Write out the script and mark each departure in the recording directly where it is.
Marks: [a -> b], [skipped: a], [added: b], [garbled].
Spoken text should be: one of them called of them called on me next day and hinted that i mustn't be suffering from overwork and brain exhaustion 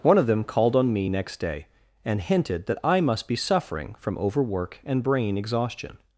one of them called [skipped: of them called] on me next day and hinted that i [mustn't -> must] be suffering from overwork and brain exhaustion